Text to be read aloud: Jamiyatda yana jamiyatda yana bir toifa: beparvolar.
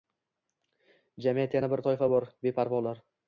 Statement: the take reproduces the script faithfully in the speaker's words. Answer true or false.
false